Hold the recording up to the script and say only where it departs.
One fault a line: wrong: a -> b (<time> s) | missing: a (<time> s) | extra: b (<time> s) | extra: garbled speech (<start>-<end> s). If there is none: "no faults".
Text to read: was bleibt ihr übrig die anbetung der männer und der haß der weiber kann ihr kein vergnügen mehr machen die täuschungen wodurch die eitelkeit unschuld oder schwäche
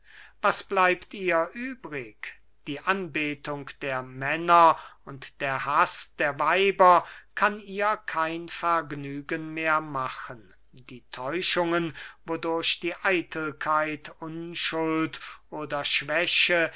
no faults